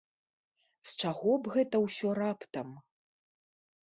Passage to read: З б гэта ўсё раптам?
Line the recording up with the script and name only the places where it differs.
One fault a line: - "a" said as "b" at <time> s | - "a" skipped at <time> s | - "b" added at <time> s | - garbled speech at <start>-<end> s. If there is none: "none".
- "чаго" added at 1.0 s